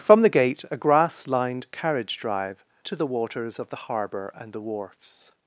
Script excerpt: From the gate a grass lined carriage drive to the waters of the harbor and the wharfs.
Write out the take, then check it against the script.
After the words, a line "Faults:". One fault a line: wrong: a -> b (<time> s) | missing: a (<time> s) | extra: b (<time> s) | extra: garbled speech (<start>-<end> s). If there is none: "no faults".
From the gate a grass lined carriage drive to the waters of the harbor and the wharfs.
Faults:
no faults